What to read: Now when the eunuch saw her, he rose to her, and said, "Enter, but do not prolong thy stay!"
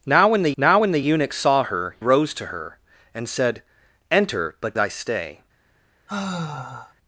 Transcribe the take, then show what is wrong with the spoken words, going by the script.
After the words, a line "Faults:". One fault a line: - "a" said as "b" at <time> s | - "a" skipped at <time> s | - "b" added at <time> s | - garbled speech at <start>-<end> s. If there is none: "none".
Now when the now when the eunuch saw her, rose to her, and said, "Enter, but thy stay!"
Faults:
- "now when the" added at 0.6 s
- "he" skipped at 2.0 s
- "do not prolong" skipped at 4.8 s